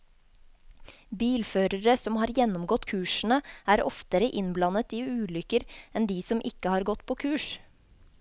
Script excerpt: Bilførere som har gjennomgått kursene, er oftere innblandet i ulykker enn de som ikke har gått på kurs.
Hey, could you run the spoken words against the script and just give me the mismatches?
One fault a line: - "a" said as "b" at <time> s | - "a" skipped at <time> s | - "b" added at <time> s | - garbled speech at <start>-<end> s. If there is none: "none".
none